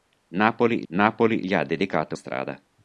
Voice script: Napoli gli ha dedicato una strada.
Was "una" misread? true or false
true